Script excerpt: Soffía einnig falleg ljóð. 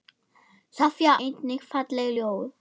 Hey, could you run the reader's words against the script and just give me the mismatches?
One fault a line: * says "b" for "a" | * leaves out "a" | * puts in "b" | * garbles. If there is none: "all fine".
all fine